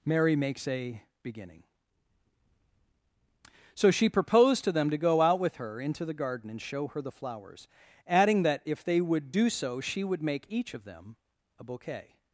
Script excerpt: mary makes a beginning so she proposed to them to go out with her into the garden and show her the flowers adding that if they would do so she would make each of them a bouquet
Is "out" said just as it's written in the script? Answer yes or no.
yes